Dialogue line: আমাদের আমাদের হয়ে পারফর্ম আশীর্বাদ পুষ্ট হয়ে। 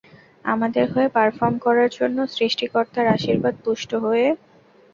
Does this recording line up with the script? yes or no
no